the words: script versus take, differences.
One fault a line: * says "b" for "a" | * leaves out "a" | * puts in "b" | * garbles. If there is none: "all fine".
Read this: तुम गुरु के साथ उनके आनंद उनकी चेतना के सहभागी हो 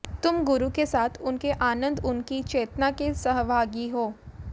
all fine